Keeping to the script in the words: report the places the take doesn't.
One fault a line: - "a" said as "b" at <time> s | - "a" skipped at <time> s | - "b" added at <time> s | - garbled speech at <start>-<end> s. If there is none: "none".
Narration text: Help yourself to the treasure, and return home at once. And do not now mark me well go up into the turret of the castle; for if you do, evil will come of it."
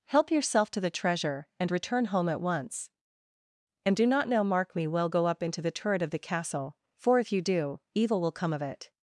none